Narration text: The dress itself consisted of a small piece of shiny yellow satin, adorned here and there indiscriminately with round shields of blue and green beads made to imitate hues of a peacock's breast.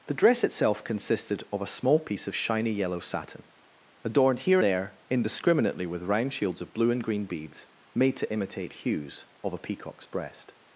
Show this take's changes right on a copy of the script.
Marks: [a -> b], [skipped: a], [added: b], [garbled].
The dress itself consisted of a small piece of shiny yellow satin, adorned here [skipped: and] there indiscriminately with round shields of blue and green beads made to imitate hues of a peacock's breast.